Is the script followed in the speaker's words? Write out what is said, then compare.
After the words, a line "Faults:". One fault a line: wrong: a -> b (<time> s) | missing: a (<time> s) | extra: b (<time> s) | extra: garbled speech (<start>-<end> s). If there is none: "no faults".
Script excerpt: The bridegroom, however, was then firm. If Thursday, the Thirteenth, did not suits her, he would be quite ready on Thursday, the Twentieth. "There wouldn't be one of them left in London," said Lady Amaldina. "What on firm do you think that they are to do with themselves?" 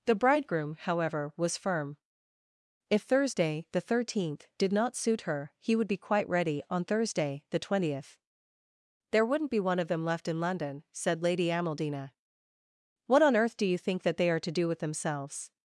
The bridegroom, however, was firm. If Thursday, the Thirteenth, did not suit her, he would be quite ready on Thursday, the Twentieth. "There wouldn't be one of them left in London," said Lady Amaldina. "What on earth do you think that they are to do with themselves?"
Faults:
missing: then (1.6 s)
wrong: suits -> suit (5.0 s)
wrong: firm -> earth (13.3 s)